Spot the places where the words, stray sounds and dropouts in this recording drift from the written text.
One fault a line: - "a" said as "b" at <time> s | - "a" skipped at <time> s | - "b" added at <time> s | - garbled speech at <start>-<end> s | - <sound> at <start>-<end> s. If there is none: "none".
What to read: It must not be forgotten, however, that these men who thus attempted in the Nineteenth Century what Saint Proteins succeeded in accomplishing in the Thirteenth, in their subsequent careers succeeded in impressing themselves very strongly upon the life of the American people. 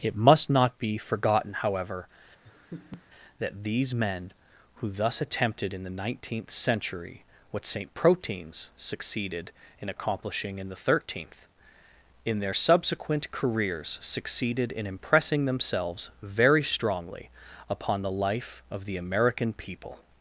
- laugh at 2.4-3.0 s